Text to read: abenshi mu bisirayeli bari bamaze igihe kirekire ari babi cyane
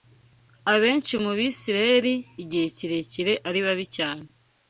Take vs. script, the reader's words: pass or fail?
fail